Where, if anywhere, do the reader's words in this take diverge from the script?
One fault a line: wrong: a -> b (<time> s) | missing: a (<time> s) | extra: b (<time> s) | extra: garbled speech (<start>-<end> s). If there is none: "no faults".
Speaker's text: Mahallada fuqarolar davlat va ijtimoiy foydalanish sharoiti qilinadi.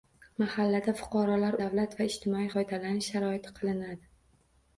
no faults